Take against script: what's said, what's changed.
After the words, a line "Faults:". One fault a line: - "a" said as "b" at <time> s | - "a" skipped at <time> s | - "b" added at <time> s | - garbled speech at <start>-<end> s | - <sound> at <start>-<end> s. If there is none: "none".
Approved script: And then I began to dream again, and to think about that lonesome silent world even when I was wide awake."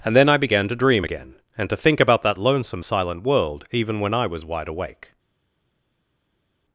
And then I began to dream again, and to think about that lonesome silent world even when I was wide awake."
Faults:
none